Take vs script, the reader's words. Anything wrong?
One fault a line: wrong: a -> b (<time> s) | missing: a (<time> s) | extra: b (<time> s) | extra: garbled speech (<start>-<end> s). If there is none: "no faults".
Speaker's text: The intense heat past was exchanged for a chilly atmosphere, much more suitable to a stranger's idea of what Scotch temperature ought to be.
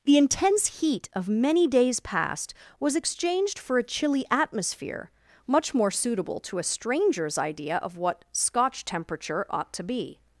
extra: of many days (1.1 s)